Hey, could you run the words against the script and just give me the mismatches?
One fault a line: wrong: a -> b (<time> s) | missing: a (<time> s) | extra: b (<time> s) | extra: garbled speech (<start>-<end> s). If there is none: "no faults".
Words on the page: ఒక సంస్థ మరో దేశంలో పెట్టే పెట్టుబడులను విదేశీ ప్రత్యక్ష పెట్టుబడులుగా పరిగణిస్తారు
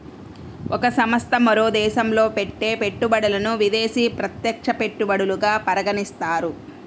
no faults